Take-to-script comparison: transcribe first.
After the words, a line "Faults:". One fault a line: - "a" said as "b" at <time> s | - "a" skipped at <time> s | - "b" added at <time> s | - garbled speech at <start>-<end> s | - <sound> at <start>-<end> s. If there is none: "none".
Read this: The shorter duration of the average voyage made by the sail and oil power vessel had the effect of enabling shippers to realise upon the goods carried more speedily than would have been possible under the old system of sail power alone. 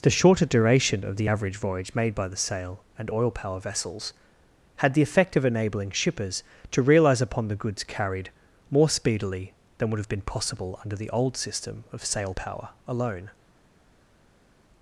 The shorter duration of the average voyage made by the sail and oil power vessels had the effect of enabling shippers to realise upon the goods carried more speedily than would have been possible under the old system of sail power alone.
Faults:
- "vessel" said as "vessels" at 3.6 s